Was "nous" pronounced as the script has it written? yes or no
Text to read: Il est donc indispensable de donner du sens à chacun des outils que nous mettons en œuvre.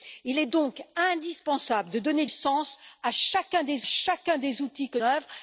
no